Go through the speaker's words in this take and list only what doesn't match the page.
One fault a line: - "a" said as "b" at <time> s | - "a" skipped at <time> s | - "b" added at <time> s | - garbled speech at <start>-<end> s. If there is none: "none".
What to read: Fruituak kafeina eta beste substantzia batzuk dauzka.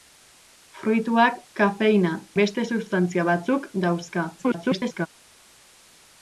- "eta" skipped at 2.1 s
- garbled speech at 4.4-5.1 s